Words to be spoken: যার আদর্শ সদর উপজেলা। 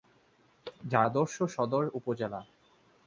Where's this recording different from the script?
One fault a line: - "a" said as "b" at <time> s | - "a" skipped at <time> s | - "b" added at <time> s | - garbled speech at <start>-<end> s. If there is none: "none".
none